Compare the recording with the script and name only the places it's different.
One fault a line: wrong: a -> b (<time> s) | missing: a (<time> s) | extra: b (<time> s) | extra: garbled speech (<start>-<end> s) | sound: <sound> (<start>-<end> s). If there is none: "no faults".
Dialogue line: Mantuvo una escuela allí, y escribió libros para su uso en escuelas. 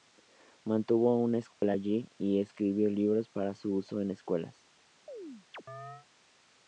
sound: dropout (1.5-1.6 s)
sound: chirp (5.1-6.1 s)